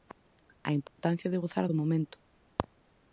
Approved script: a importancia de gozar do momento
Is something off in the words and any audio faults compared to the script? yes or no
yes